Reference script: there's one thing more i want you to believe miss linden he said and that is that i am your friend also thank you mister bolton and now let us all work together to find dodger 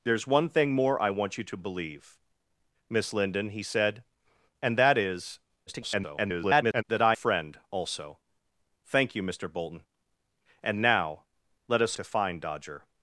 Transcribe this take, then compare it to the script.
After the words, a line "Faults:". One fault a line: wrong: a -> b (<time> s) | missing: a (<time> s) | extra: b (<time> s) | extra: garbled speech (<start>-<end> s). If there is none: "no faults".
there's one thing more i want you to believe miss linden he said and that is [garbled] that i friend also thank you mister bolton and now let us to find dodger
Faults:
extra: garbled speech (5.7-6.8 s)
missing: am your (7.1 s)
missing: all work together (12.0 s)